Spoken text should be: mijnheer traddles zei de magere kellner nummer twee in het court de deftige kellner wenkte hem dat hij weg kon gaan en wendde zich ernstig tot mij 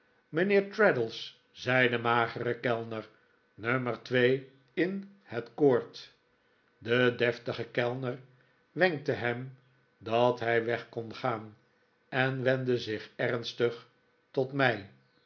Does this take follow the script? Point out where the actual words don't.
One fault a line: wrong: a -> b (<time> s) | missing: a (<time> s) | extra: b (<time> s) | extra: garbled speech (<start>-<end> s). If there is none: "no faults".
no faults